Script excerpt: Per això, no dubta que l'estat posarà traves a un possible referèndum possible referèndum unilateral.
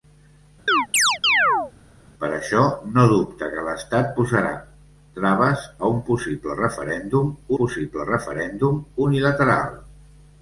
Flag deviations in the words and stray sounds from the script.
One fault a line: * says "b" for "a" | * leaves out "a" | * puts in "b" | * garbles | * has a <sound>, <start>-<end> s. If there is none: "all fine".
* has a chirp, 0.7-1.7 s